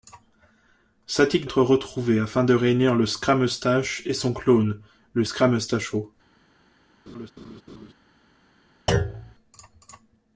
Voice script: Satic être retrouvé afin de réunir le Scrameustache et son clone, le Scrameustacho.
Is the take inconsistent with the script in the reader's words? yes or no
no